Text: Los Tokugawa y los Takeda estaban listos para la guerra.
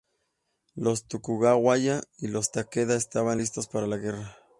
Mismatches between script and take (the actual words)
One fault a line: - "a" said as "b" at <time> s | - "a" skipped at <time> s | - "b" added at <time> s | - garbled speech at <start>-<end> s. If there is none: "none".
none